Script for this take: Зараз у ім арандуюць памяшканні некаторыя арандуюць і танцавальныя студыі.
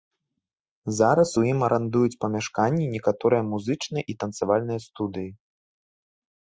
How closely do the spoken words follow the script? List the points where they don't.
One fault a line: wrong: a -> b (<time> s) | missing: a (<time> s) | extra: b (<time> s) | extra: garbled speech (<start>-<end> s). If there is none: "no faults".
wrong: арандуюць -> музычныя (3.5 s)